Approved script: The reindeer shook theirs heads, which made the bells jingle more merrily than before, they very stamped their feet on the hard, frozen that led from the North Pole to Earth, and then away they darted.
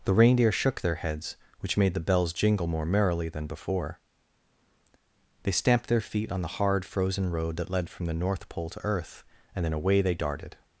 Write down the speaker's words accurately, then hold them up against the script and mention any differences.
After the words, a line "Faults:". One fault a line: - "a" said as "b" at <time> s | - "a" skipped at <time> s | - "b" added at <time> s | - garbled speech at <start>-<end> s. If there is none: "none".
The reindeer shook their heads, which made the bells jingle more merrily than before, they stamped their feet on the hard, frozen road that led from the North Pole to Earth, and then away they darted.
Faults:
- "theirs" said as "their" at 0.8 s
- "very" skipped at 5.5 s
- "road" added at 7.3 s